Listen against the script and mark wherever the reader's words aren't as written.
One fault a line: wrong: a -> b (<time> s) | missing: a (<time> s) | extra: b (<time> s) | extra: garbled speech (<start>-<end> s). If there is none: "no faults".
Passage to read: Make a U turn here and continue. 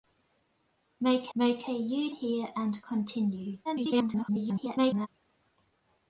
extra: make (1.3 s)
missing: turn (2.1 s)
extra: garbled speech (3.6-5.1 s)